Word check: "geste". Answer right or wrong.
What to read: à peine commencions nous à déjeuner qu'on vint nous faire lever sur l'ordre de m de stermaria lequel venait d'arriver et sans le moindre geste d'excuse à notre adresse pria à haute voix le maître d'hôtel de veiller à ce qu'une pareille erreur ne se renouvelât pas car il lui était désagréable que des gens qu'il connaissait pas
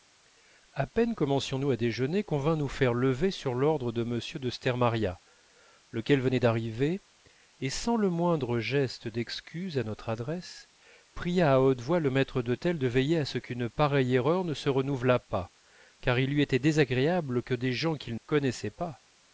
right